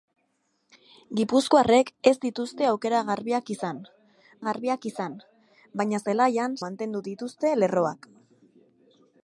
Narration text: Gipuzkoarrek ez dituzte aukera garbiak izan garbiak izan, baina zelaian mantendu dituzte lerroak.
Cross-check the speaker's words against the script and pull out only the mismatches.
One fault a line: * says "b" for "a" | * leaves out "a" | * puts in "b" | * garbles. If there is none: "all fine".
all fine